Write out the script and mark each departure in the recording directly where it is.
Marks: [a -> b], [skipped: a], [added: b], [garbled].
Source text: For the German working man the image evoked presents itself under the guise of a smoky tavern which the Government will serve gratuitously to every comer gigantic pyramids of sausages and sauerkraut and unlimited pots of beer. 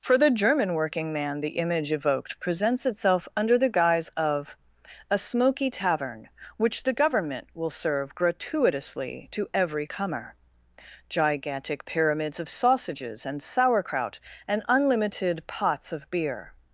For the German working man the image evoked presents itself under the guise of a smoky tavern which the Government will serve gratuitously to every comer gigantic pyramids of sausages and sauerkraut and unlimited pots of beer.